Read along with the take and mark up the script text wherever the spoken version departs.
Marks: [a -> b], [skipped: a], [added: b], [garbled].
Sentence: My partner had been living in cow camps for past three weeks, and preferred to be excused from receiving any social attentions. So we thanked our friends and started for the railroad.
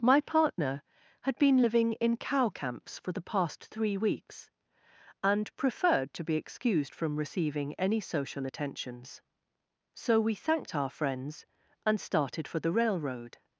My partner had been living in cow camps for [added: the] past three weeks, and preferred to be excused from receiving any social attentions. So we thanked our friends and started for the railroad.